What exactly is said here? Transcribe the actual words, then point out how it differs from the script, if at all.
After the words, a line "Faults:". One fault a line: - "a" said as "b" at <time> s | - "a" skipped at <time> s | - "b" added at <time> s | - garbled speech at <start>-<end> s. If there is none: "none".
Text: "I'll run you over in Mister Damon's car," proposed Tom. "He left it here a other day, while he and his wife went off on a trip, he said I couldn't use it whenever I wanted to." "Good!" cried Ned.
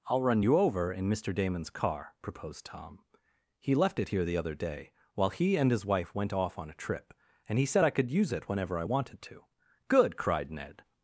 "I'll run you over in Mister Damon's car," proposed Tom. "He left it here the other day, while he and his wife went off on a trip, and he said I could use it whenever I wanted to." "Good!" cried Ned.
Faults:
- "a" said as "the" at 4.2 s
- "and" added at 7.5 s
- "couldn't" said as "could" at 8.0 s